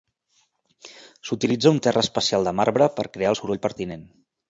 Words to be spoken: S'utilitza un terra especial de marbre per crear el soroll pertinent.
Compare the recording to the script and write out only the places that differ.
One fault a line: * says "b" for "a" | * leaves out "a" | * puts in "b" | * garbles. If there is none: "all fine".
all fine